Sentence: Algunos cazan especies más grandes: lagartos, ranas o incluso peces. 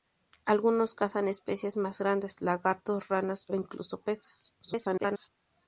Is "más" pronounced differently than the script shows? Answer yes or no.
no